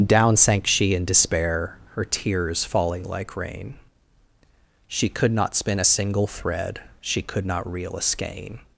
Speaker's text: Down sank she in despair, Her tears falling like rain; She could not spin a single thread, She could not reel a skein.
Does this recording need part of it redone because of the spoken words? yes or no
no